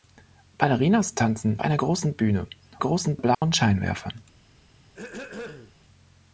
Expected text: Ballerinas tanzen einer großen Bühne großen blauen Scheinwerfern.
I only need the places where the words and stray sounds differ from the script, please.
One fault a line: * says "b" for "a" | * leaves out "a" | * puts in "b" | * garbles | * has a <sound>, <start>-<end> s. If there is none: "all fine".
* has a dropout, 3.3-3.4 s
* has a throat clearing, 4.8-5.8 s